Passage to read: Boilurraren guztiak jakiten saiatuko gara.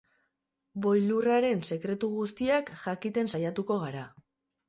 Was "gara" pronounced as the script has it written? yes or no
yes